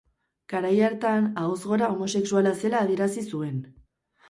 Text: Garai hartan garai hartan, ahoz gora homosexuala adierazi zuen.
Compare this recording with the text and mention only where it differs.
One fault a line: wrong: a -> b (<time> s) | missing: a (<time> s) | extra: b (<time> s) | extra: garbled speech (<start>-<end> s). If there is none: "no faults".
missing: garai hartan (1.3 s)
extra: zela (2.6 s)